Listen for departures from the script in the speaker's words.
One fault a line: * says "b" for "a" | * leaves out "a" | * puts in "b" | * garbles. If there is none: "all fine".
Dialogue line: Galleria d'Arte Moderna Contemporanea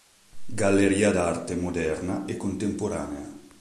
* puts in "e"